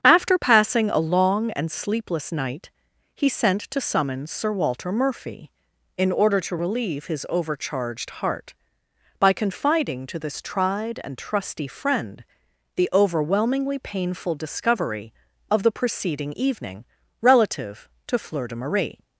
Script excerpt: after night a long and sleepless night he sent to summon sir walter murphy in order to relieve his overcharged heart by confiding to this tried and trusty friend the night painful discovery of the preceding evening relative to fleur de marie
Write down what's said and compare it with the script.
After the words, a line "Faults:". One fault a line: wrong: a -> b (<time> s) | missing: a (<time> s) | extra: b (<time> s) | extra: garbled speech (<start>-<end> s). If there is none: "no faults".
after passing a long and sleepless night he sent to summon sir walter murphy in order to relieve his overcharged heart by confiding to this tried and trusty friend the overwhelmingly painful discovery of the preceding evening relative to fleur de marie
Faults:
wrong: night -> passing (0.4 s)
wrong: night -> overwhelmingly (12.9 s)